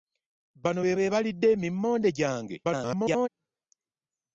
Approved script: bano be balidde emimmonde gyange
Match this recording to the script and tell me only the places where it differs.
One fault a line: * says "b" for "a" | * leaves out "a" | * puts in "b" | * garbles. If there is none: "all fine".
* puts in "be"
* garbles